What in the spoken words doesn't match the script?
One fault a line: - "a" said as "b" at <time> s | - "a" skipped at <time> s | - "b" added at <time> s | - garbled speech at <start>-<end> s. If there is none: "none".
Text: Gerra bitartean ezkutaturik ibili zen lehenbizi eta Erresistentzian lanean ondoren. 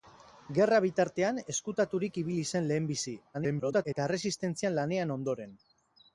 - garbled speech at 3.3-3.9 s